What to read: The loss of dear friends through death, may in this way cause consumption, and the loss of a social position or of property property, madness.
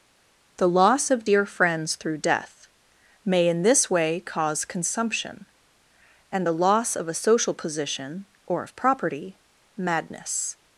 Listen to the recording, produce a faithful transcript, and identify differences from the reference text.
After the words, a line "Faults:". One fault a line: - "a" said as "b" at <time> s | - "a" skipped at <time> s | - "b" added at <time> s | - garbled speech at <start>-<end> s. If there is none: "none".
The loss of dear friends through death, may in this way cause consumption, and the loss of a social position or of property, madness.
Faults:
- "property" skipped at 9.4 s